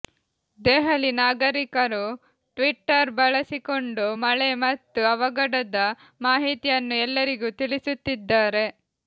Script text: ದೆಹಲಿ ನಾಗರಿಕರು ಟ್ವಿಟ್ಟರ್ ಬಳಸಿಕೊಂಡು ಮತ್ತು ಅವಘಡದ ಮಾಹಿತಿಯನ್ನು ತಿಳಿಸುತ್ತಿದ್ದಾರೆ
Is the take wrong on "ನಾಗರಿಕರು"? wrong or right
right